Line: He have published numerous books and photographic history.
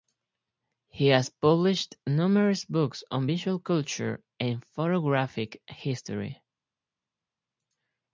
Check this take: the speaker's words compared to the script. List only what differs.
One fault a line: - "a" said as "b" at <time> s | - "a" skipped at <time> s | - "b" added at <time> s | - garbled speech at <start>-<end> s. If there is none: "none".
- "have" said as "has" at 1.1 s
- "on visual culture" added at 3.1 s